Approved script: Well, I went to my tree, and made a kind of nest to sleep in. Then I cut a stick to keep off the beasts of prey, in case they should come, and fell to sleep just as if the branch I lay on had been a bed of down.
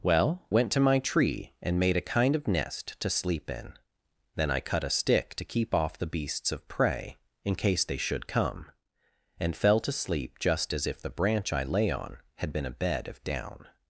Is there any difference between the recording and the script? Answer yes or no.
yes